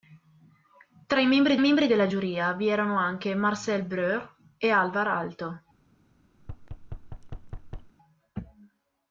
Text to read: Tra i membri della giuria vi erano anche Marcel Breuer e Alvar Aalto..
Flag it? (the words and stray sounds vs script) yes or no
yes